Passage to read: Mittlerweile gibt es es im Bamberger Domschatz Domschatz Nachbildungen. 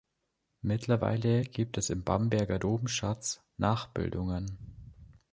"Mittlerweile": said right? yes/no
yes